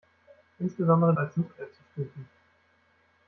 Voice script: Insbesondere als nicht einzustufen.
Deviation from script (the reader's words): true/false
false